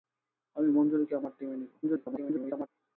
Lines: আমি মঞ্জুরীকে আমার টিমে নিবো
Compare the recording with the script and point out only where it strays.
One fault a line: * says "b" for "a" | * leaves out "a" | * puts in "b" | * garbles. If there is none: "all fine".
* garbles